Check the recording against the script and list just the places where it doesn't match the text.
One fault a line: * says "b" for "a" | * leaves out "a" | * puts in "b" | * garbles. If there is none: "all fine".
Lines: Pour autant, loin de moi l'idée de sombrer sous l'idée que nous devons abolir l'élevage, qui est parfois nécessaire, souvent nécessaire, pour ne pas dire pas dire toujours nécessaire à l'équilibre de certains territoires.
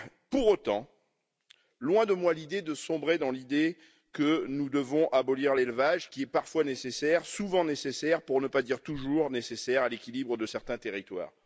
* says "dans" for "sous"
* leaves out "pas dire"